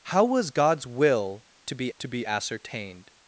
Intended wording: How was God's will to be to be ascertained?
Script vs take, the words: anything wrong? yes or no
no